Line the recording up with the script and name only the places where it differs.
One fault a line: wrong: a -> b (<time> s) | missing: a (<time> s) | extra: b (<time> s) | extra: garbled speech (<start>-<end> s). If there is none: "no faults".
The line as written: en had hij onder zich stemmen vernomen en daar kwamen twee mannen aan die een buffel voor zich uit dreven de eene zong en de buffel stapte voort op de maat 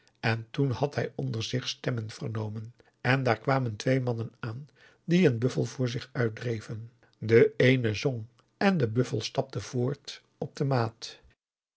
extra: toen (0.5 s)